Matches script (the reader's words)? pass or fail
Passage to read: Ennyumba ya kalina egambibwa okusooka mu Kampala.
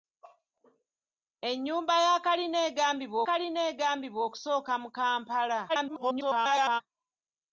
fail